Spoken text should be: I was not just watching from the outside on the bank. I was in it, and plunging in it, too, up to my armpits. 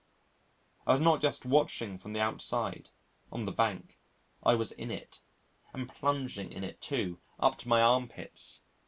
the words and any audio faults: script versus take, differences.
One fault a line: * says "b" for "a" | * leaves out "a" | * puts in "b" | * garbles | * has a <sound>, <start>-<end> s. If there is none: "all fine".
all fine